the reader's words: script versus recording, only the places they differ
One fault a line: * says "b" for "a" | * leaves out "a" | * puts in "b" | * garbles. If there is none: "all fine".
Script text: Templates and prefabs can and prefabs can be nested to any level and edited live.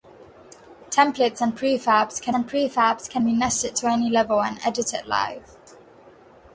all fine